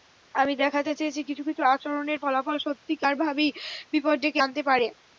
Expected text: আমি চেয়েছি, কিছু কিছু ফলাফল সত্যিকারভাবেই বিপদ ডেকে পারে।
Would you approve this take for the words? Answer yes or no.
no